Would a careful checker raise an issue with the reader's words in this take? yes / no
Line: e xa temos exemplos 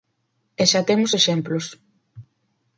no